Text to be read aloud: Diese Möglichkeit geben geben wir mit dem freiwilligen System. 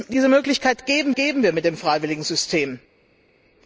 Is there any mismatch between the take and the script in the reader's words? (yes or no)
no